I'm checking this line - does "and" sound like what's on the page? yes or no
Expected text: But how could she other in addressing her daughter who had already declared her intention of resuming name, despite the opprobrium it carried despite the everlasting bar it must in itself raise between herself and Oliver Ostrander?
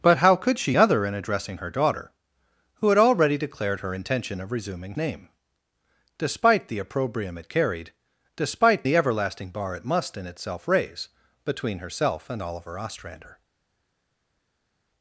yes